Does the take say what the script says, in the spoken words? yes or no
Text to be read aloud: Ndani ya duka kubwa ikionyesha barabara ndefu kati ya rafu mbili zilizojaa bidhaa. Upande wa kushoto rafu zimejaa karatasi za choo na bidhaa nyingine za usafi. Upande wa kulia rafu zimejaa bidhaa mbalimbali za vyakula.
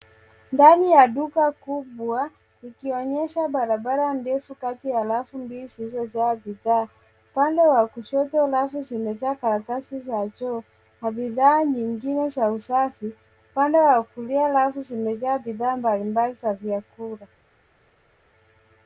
yes